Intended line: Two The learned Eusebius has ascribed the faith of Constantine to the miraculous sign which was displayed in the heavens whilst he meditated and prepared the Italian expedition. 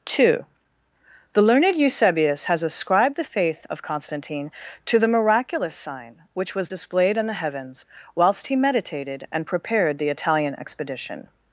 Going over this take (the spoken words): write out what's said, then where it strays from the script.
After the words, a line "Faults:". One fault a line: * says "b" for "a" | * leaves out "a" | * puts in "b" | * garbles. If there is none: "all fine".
Two The learned Eusebius has ascribed the faith of Constantine to the miraculous sign which was displayed in the heavens whilst he meditated and prepared the Italian expedition.
Faults:
all fine